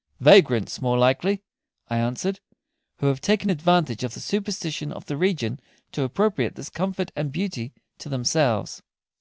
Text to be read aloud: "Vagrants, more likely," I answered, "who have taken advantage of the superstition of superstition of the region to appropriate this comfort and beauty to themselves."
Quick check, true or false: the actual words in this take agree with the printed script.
false